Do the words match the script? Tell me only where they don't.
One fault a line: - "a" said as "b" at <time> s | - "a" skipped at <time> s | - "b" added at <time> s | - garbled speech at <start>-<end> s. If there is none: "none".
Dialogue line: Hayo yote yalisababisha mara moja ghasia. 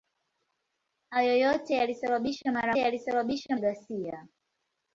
- "moja" said as "yalisababisha" at 2.8 s